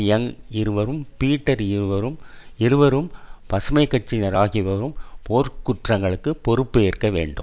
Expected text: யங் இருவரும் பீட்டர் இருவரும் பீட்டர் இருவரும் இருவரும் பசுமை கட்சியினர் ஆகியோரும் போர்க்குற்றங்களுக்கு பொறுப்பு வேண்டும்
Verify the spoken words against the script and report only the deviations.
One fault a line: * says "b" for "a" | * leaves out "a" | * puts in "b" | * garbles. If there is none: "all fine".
* leaves out "பீட்டர்"
* leaves out "இருவரும்"
* puts in "ஏற்க"